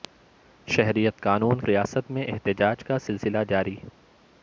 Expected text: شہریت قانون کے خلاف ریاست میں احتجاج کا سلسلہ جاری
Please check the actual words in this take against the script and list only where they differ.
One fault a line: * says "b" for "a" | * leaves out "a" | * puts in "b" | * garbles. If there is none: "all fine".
* leaves out "کے خلاف"